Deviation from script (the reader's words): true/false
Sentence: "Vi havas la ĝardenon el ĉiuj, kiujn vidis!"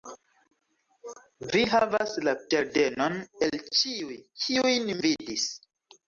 false